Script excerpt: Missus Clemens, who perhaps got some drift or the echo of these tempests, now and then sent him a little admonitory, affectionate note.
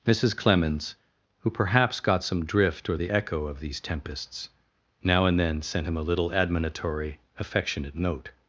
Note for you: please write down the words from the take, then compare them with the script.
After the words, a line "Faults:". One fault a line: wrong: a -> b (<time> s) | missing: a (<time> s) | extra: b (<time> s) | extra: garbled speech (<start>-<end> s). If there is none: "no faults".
Missus Clemens, who perhaps got some drift or the echo of these tempests, now and then sent him a little admonitory, affectionate note.
Faults:
no faults